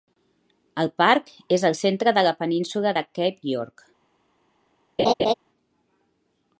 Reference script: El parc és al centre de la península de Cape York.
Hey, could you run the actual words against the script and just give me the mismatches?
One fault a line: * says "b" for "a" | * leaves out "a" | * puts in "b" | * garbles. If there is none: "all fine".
all fine